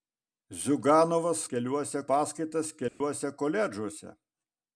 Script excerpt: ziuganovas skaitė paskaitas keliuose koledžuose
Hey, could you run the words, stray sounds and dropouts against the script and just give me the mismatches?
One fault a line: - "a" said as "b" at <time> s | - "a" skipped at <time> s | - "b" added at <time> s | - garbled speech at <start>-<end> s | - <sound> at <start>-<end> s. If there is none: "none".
- "skaitė" said as "keliuose" at 1.5 s
- dropout at 2.9-3.0 s